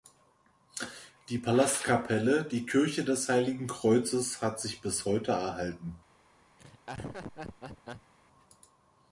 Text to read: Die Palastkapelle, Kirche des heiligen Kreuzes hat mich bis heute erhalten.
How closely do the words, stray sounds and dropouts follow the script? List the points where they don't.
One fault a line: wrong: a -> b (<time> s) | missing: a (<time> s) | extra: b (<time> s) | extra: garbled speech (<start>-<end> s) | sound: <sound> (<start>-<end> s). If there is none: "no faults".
extra: die (2.5 s)
wrong: mich -> sich (4.6 s)
sound: laugh (6.6-8.1 s)